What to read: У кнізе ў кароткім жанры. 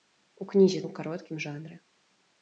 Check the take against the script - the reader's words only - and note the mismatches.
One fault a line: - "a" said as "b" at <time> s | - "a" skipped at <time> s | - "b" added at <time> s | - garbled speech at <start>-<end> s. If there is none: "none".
none